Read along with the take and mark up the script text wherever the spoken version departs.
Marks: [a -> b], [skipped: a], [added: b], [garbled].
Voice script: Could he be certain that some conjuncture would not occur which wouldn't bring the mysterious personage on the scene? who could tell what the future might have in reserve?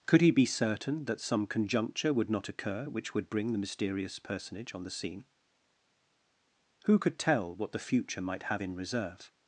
Could he be certain that some conjuncture would not occur which [wouldn't -> would] bring the mysterious personage on the scene? who could tell what the future might have in reserve?